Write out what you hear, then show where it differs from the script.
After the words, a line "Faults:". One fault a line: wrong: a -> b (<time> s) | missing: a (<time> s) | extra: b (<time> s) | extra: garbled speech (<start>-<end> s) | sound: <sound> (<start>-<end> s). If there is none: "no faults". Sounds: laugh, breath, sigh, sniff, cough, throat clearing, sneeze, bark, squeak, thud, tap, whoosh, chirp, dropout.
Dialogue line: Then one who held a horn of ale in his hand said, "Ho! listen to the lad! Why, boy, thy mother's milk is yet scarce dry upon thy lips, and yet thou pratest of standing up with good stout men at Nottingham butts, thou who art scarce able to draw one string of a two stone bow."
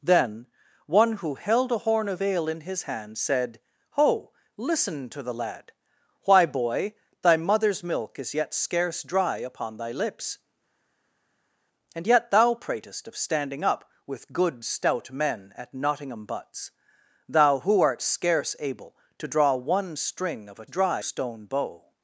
Then one who held a horn of ale in his hand said, "Ho! listen to the lad! Why, boy, thy mother's milk is yet scarce dry upon thy lips, and yet thou pratest of standing up with good stout men at Nottingham butts, thou who art scarce able to draw one string of a dry stone bow."
Faults:
wrong: two -> dry (20.7 s)